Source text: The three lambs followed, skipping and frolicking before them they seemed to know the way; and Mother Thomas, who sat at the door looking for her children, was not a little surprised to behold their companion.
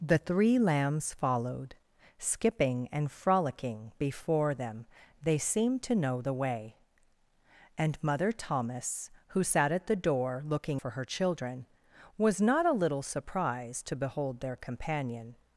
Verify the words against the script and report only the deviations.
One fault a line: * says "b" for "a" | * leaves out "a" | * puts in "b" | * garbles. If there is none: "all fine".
all fine